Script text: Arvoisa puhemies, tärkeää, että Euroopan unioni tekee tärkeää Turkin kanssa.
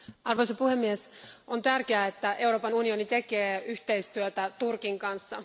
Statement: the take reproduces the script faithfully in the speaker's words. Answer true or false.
false